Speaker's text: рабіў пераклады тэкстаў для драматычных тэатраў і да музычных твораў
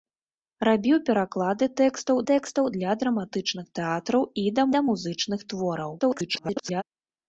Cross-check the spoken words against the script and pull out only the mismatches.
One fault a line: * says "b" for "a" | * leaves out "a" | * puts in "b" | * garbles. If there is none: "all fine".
* puts in "тэкстаў"
* puts in "да"
* garbles